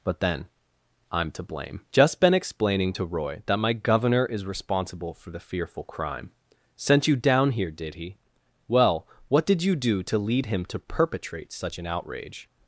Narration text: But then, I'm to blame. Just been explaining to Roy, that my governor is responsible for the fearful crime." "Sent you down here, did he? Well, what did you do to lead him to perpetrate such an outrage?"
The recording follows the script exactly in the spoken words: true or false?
true